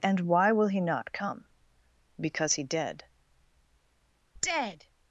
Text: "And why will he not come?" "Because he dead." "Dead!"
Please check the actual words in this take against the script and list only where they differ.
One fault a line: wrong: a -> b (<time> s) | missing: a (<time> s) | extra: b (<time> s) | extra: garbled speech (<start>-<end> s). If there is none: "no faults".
no faults